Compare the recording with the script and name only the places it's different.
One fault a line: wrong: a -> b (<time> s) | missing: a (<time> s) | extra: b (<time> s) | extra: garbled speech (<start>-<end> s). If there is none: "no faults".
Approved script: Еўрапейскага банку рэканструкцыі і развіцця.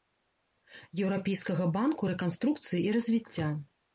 no faults